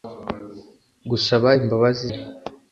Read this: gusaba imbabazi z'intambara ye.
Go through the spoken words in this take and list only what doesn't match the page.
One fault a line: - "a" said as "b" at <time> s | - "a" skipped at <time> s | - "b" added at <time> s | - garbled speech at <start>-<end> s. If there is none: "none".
- "z'intambara" skipped at 2.0 s